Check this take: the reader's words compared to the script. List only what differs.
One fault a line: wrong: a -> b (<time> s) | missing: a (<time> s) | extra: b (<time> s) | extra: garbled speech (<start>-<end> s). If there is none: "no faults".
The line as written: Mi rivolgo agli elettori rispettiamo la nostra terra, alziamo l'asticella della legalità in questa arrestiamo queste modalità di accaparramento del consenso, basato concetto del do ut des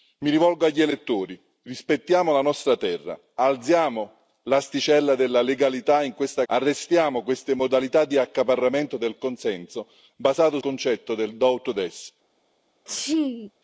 no faults